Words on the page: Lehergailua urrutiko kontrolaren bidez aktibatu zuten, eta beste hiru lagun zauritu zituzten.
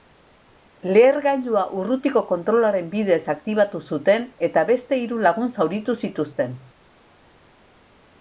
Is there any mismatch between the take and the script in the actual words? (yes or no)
no